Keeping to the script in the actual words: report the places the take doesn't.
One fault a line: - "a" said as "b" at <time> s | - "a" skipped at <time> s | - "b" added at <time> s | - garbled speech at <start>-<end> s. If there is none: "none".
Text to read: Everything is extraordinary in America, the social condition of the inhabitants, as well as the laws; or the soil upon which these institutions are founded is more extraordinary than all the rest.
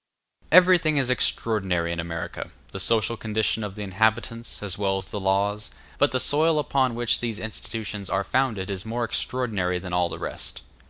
- "or" said as "but" at 6.0 s